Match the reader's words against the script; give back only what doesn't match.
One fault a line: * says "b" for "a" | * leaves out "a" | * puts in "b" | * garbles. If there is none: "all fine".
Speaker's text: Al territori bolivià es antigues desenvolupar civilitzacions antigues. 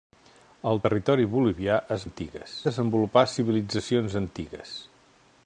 all fine